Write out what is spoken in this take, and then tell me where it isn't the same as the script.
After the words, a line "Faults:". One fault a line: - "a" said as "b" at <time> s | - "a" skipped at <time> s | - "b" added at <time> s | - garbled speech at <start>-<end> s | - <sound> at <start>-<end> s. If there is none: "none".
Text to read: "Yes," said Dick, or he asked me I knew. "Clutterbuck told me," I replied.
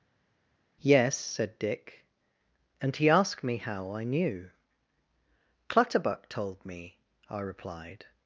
"Yes," said Dick, and he asked me how I knew. "Clutterbuck told me," I replied.
Faults:
- "or" said as "and" at 2.8 s
- "how" added at 3.6 s